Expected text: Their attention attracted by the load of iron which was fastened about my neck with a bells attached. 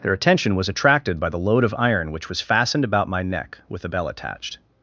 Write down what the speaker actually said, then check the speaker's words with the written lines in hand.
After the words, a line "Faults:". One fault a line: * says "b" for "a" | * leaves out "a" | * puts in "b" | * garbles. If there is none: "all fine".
Their attention was attracted by the load of iron which was fastened about my neck with a bell attached.
Faults:
* puts in "was"
* says "bell" for "bells"